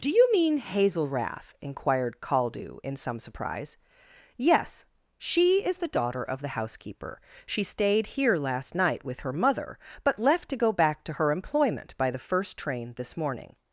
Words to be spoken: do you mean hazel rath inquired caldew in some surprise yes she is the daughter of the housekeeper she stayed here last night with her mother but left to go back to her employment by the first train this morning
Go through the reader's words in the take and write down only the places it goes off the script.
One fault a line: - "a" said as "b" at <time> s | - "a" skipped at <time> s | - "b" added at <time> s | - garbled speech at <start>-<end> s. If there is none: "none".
none